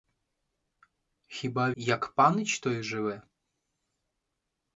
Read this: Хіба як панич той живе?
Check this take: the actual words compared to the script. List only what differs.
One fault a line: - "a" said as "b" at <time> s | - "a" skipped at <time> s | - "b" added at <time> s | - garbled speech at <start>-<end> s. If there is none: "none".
none